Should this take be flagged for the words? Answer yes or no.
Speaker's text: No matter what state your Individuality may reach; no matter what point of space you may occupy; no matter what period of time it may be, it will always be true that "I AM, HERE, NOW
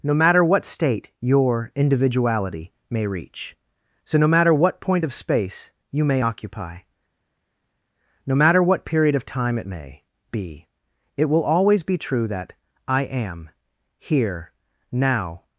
yes